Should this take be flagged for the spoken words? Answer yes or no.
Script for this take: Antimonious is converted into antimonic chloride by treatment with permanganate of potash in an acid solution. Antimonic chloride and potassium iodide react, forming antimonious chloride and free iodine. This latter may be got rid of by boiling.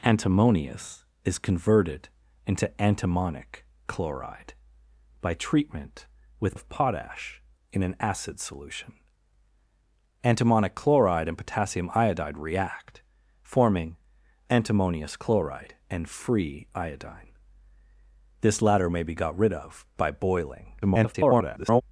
yes